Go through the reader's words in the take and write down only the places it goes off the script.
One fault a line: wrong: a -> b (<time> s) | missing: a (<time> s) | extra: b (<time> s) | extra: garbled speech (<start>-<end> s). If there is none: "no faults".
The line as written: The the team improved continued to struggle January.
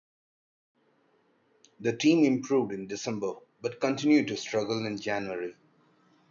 missing: the (1.9 s)
extra: in December but (2.7 s)
extra: in (4.8 s)